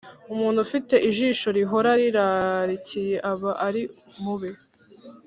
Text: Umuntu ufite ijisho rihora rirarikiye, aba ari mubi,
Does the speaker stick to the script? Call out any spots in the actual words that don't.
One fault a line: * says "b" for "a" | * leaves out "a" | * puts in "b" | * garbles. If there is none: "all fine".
all fine